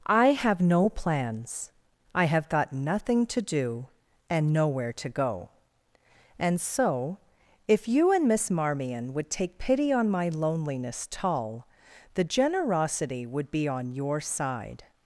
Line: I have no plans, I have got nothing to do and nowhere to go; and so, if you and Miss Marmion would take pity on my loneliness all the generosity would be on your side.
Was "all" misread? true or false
true